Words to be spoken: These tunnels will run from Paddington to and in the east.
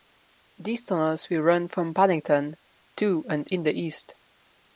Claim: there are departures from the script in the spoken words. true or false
false